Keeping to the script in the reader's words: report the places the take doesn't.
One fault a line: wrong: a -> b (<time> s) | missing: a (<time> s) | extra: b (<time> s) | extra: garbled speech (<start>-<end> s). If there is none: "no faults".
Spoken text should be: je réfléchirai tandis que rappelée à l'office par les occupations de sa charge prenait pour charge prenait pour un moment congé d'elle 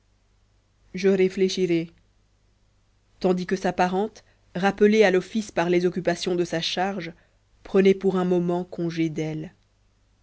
extra: sa parente (3.5 s)
missing: charge prenait pour (8.1 s)